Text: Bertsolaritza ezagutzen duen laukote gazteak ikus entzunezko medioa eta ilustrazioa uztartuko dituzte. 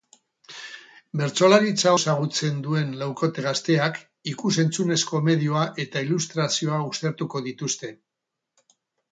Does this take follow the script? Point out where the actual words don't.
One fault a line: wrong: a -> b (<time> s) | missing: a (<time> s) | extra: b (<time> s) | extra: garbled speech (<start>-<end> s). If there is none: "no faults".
no faults